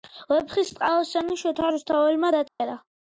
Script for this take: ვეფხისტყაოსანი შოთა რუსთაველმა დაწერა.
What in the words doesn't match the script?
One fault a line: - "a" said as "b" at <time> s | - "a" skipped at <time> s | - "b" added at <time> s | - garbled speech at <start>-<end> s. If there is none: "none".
none